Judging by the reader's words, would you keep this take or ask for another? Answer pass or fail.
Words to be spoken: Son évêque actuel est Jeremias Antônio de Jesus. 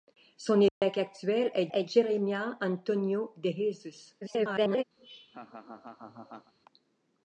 fail